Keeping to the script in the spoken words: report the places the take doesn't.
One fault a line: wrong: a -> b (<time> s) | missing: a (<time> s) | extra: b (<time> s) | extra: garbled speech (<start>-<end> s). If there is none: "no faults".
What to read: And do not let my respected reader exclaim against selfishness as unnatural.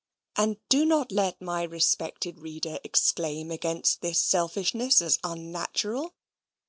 extra: this (4.0 s)